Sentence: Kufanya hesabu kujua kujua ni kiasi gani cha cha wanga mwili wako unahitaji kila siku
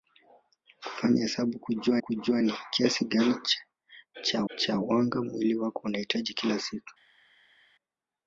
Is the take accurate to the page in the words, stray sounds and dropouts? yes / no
yes